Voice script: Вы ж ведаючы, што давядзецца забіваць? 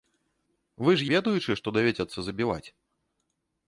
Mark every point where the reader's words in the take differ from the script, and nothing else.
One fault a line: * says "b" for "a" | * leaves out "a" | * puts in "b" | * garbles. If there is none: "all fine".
all fine